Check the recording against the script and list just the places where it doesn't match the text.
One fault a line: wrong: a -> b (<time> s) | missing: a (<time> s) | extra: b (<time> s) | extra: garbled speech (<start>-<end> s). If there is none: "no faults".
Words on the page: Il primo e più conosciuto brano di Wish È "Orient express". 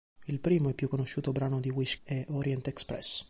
no faults